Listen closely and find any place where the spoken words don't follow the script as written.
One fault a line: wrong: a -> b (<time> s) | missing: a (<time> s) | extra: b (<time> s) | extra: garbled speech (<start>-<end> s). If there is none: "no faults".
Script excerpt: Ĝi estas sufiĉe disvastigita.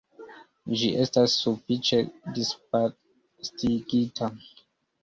no faults